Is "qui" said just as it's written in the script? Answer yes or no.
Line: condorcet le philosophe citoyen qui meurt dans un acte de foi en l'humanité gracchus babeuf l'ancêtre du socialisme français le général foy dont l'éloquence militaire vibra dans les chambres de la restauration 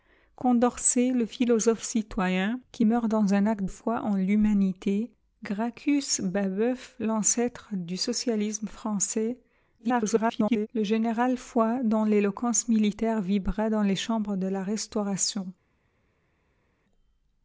yes